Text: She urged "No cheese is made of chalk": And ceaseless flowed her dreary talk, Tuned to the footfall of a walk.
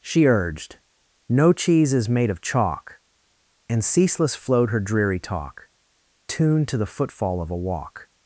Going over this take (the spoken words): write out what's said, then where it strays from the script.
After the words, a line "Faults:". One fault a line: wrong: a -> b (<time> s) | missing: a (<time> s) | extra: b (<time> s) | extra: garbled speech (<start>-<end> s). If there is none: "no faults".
She urged "No cheese is made of chalk": And ceaseless flowed her dreary talk, Tuned to the footfall of a walk.
Faults:
no faults